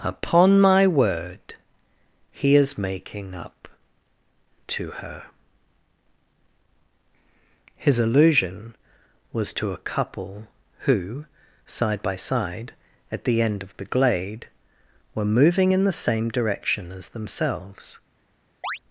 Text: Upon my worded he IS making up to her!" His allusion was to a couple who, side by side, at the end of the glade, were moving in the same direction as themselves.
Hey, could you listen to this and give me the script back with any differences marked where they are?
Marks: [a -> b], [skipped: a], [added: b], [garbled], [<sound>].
Upon my [worded -> word] he IS making up to her!" His allusion was to a couple who, side by side, at the end of the glade, were moving in the same direction as themselves. [chirp]